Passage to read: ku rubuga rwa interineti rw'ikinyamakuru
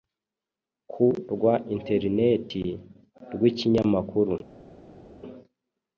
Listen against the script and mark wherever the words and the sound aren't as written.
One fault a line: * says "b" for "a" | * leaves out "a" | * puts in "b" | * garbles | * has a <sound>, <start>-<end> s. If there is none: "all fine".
* leaves out "rubuga"